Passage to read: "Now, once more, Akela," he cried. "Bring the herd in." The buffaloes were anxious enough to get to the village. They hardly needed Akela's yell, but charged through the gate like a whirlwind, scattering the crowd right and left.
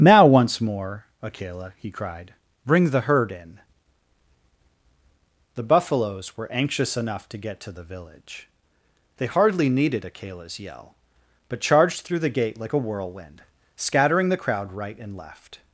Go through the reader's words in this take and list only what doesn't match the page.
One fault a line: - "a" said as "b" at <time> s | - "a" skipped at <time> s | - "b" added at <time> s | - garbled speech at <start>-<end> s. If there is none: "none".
none